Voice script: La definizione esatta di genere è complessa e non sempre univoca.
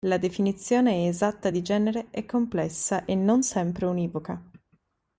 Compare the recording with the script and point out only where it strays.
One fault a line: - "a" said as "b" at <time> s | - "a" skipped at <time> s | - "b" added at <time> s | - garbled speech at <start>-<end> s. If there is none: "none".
none